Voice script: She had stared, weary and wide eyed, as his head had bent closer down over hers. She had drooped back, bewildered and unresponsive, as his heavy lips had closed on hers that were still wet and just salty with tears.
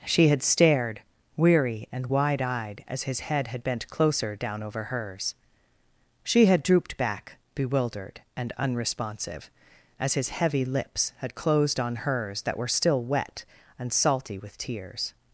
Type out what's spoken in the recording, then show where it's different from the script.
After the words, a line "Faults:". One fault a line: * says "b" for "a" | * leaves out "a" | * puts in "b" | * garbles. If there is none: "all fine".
She had stared, weary and wide eyed, as his head had bent closer down over hers. She had drooped back, bewildered and unresponsive, as his heavy lips had closed on hers that were still wet and salty with tears.
Faults:
* leaves out "just"